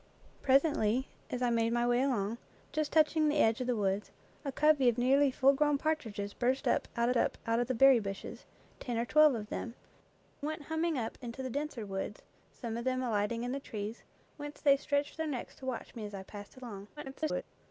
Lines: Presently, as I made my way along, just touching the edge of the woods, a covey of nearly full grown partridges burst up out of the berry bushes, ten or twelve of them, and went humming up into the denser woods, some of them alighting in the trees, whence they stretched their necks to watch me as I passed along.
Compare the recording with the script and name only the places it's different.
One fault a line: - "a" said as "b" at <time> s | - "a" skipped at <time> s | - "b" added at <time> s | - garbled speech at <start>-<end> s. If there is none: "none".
- "up out" added at 7.1 s
- "and" skipped at 9.8 s
- garbled speech at 17.0-17.4 s